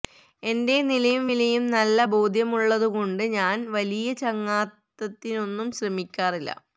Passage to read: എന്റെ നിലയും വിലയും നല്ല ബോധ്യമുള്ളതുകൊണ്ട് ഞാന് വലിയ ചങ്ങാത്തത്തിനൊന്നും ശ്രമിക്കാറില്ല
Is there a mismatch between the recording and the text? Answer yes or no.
no